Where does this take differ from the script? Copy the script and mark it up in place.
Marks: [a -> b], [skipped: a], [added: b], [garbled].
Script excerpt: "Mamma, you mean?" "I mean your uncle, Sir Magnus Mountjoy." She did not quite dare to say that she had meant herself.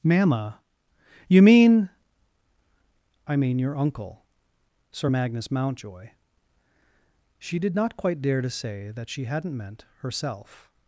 "Mamma, you mean?" "I mean your uncle, Sir Magnus Mountjoy." She did not quite dare to say that she [had -> hadn't] meant herself.